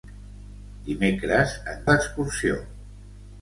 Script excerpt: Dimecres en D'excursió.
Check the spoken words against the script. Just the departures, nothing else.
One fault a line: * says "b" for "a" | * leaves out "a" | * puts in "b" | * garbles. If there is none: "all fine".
all fine